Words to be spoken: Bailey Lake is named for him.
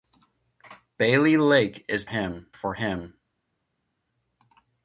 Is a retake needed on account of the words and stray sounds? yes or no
yes